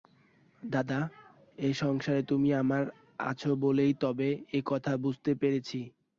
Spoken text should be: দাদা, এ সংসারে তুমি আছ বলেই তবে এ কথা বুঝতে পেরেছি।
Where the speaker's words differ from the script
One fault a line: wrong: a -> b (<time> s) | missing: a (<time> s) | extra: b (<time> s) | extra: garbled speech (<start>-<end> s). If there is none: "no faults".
extra: আমার (2.6 s)